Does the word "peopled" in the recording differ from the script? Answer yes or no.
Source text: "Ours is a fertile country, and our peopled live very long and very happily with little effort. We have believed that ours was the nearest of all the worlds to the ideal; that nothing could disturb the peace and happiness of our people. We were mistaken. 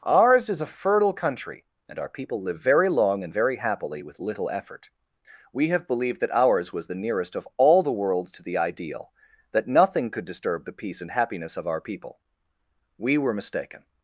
yes